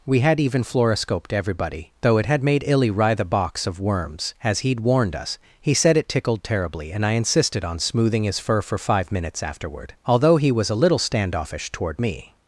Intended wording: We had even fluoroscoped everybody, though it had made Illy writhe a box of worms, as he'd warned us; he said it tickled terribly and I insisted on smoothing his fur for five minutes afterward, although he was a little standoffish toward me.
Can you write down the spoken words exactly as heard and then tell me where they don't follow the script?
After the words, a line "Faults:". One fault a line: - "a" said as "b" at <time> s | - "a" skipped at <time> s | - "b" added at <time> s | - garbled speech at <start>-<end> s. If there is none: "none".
We had even fluoroscoped everybody, though it had made Illy writhe a box of worms, as he'd warned us; he said it tickled terribly and I insisted on smoothing his fur for five minutes afterward, although he was a little standoffish toward me.
Faults:
none